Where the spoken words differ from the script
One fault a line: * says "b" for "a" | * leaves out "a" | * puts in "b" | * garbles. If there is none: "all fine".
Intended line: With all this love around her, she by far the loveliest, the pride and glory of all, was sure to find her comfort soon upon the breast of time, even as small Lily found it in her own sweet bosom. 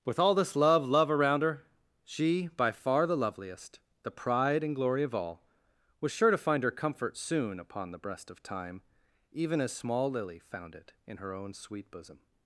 * puts in "love"